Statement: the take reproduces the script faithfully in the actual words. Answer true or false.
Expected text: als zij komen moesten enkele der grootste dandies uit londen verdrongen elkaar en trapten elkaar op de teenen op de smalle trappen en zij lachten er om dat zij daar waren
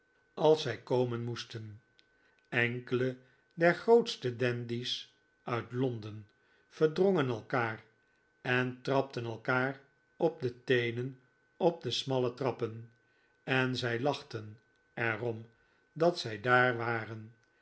true